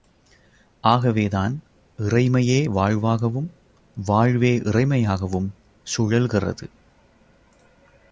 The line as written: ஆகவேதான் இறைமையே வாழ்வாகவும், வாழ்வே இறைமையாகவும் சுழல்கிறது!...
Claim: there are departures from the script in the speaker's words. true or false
false